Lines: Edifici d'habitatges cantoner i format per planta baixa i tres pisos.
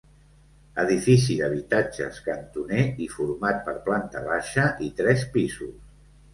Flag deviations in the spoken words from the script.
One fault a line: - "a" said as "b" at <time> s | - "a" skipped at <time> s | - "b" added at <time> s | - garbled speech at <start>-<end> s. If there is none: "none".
none